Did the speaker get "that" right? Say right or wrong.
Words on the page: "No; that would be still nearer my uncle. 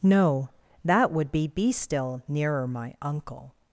right